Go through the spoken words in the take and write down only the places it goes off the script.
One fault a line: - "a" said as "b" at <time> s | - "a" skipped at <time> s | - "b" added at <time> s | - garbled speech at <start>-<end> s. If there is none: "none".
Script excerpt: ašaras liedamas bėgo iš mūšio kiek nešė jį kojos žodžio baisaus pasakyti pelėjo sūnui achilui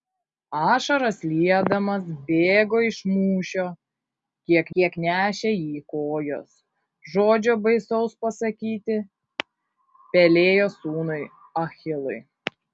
- "kiek" added at 4.8 s